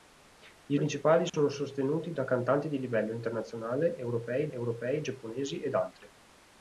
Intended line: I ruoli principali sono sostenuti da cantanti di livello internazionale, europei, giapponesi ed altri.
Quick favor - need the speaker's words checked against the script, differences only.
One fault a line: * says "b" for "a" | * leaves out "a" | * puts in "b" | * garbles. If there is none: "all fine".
* leaves out "ruoli"
* puts in "europei"